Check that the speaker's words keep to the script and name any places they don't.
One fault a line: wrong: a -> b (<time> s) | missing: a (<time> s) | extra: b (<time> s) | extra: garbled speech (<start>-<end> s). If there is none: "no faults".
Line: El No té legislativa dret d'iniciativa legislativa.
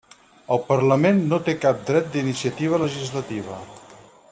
extra: Parlament (0.7 s)
wrong: legislativa -> cap (1.7 s)